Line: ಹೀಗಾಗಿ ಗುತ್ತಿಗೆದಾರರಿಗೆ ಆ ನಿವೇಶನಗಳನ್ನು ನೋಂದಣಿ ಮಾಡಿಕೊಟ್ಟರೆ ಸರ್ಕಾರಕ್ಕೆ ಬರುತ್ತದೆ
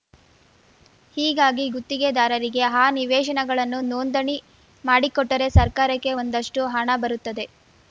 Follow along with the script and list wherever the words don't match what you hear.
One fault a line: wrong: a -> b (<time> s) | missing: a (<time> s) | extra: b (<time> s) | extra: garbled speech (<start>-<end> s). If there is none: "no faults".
extra: ಒಂದಷ್ಟುಹಣ (6.2 s)